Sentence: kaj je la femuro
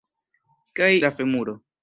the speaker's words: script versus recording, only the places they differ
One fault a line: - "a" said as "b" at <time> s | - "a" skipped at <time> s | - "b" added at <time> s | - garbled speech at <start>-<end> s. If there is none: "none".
- "je" skipped at 0.9 s